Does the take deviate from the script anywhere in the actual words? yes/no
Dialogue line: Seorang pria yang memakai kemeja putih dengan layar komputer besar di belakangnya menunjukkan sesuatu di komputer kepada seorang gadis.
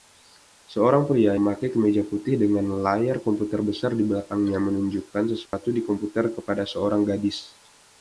yes